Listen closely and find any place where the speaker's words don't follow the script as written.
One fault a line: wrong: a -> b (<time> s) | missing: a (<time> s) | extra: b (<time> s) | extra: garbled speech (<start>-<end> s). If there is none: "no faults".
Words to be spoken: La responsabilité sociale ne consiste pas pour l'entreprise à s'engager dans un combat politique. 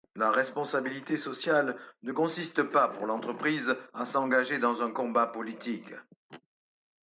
no faults